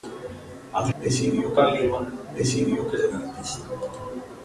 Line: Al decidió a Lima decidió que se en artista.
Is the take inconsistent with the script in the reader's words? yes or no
no